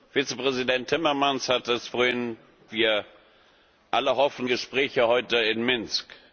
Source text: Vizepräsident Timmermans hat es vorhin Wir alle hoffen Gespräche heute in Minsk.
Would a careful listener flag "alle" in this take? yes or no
no